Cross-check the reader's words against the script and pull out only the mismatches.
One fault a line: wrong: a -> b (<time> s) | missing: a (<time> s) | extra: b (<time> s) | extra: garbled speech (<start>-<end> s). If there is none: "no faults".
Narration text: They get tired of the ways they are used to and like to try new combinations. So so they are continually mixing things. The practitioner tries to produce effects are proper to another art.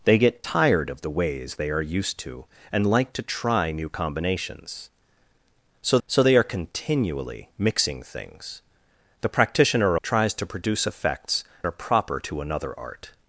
no faults